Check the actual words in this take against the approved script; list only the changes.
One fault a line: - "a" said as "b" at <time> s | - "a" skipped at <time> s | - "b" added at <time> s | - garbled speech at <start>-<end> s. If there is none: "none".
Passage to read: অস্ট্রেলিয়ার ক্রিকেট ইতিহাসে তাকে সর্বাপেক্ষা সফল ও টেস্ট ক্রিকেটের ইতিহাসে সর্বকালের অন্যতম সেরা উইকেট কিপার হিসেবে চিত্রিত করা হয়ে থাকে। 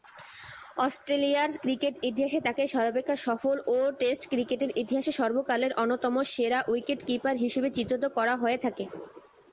none